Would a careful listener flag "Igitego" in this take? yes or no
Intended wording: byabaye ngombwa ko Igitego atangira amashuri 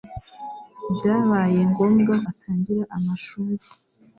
yes